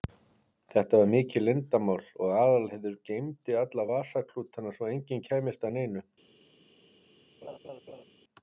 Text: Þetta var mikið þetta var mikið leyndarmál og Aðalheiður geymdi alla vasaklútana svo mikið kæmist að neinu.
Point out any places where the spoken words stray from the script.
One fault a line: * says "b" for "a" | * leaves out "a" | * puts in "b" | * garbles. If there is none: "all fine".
* leaves out "þetta var mikið"
* says "enginn" for "mikið"